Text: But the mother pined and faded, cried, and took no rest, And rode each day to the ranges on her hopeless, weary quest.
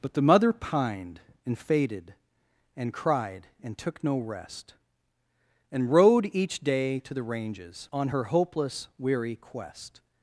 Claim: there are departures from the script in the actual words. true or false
true